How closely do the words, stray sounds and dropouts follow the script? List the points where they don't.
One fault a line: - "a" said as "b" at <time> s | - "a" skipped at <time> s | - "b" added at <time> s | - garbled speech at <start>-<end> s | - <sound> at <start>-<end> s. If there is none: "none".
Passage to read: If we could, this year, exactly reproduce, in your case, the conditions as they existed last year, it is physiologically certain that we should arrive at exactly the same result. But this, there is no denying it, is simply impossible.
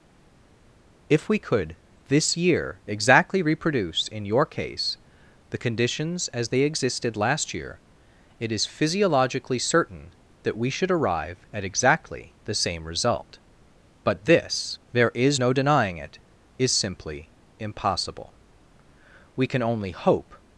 - "We can only hope" added at 19.4 s